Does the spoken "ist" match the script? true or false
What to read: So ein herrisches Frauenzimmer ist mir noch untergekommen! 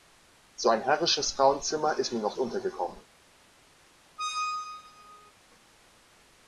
true